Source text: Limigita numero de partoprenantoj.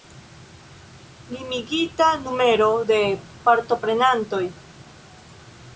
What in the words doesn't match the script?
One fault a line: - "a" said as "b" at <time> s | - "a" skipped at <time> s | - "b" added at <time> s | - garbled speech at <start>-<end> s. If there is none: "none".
none